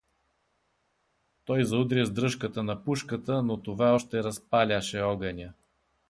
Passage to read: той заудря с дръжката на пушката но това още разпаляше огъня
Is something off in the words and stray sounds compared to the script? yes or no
no